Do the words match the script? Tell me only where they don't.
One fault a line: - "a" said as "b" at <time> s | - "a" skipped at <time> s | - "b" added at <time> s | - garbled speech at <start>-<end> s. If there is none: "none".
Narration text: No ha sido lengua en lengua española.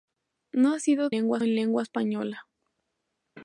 none